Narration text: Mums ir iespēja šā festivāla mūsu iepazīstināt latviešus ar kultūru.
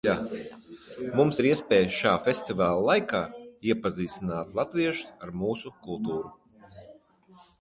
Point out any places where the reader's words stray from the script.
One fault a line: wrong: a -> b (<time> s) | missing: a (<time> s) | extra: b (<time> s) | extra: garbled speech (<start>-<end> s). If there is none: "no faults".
wrong: mūsu -> laikā (2.9 s)
extra: mūsu (5.4 s)